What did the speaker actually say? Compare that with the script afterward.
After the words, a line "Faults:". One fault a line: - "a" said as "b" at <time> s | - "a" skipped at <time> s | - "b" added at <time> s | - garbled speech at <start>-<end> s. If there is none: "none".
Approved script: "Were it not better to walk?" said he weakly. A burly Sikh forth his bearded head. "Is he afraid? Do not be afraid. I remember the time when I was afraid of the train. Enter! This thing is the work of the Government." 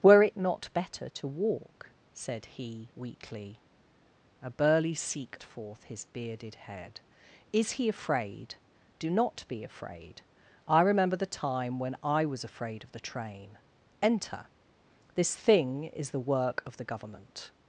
"Were it not better to walk?" said he weakly. A burly Sikh forth his bearded head. "Is he afraid? Do not be afraid. I remember the time when I was afraid of the train. Enter! This thing is the work of the Government."
Faults:
none